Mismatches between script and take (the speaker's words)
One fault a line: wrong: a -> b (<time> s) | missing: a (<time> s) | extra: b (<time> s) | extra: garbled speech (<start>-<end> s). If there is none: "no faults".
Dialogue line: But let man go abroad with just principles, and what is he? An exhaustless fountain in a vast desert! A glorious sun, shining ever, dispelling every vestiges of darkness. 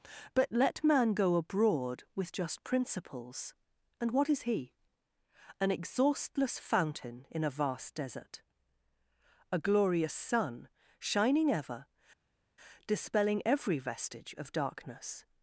wrong: vestiges -> vestige (13.8 s)